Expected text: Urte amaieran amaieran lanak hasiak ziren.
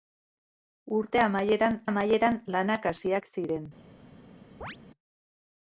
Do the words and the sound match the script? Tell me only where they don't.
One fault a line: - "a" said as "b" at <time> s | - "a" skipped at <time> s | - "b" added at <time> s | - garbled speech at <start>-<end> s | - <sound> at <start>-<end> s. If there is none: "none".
- chirp at 4.6-4.8 s